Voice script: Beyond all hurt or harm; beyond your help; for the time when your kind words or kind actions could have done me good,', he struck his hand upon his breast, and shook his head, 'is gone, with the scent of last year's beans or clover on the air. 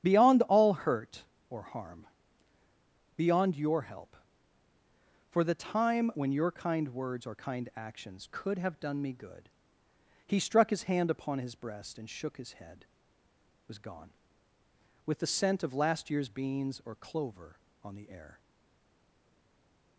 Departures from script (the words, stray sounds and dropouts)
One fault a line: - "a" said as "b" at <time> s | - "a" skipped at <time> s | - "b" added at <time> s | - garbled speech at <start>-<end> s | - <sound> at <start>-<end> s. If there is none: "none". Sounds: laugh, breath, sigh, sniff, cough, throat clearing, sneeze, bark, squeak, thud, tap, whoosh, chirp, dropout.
- "is" said as "was" at 13.7 s